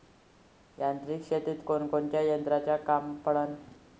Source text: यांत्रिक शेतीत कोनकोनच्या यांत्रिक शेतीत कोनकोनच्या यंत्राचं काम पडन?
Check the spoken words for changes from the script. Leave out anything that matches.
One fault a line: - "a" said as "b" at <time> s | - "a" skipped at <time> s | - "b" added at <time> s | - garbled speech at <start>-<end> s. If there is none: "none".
- "यांत्रिक शेतीत कोनकोनच्या" skipped at 2.2 s